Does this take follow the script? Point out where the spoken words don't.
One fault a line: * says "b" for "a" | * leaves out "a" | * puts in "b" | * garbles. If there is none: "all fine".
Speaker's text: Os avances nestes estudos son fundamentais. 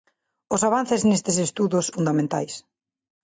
* leaves out "son"